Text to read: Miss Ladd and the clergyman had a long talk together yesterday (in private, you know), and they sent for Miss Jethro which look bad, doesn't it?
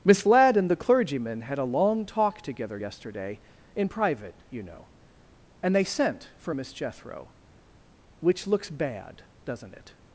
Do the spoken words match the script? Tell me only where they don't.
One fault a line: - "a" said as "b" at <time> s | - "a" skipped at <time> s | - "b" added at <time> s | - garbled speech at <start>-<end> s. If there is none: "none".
- "look" said as "looks" at 8.5 s